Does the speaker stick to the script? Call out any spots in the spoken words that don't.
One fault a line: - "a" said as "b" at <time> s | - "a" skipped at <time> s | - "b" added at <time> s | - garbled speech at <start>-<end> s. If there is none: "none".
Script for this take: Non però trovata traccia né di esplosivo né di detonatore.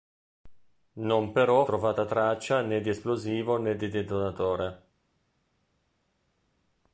none